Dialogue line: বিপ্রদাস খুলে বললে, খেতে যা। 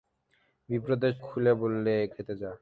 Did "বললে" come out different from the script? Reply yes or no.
no